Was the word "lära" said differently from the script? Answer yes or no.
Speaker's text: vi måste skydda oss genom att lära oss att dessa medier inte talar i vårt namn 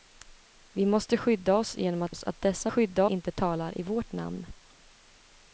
yes